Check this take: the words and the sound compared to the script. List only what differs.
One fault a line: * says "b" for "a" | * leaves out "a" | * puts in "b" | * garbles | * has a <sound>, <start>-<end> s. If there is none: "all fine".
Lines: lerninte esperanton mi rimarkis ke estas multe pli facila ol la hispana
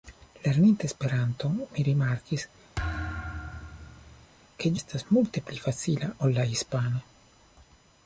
* has a thud, 2.8-4.3 s